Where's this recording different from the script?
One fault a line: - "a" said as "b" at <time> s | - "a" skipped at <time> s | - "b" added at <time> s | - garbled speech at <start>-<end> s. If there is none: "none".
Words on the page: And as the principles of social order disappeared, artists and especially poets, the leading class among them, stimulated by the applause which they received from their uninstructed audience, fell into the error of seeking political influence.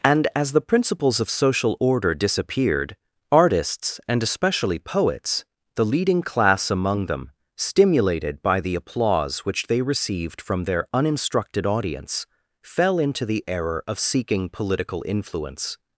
none